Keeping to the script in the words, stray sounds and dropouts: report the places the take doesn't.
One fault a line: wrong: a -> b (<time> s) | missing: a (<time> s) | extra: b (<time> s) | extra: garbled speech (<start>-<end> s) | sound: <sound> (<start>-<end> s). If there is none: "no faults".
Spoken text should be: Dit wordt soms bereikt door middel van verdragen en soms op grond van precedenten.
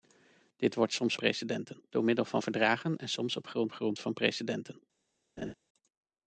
wrong: bereikt -> precedenten (1.1 s)
extra: grond (3.7 s)
sound: laugh (5.4-5.5 s)